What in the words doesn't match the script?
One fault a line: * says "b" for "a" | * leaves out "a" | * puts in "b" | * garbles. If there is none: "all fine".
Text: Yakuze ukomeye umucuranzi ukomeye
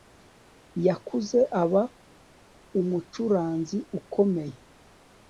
* says "aba" for "ukomeye"